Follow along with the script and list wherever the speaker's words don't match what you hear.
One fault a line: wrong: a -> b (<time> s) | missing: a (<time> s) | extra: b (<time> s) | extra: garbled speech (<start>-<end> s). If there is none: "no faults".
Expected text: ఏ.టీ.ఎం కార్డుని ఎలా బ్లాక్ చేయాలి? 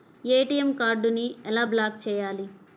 no faults